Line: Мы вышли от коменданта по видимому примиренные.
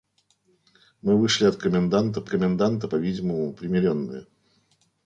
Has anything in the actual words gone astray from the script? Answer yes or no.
yes